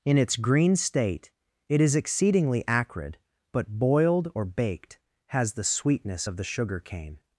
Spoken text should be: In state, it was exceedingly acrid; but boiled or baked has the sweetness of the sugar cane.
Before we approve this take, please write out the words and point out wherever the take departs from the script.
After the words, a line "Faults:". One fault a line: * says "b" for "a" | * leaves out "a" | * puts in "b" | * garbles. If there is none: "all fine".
In its green state, it is exceedingly acrid; but boiled or baked has the sweetness of the sugar cane.
Faults:
* puts in "its green"
* says "is" for "was"